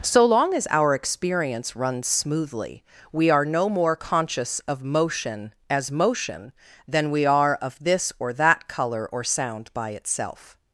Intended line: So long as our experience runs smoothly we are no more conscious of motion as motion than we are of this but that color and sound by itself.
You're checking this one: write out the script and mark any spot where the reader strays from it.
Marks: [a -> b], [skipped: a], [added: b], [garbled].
So long as our experience runs smoothly we are no more conscious of motion as motion than we are of this [but -> or] that color [and -> or] sound by itself.